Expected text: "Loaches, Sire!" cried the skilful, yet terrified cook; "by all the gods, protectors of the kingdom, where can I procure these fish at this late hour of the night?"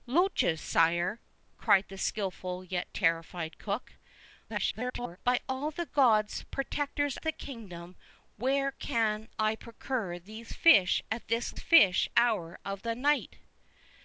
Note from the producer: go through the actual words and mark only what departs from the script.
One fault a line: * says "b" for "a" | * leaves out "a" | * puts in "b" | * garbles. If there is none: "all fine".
* garbles
* leaves out "of"
* says "fish" for "late"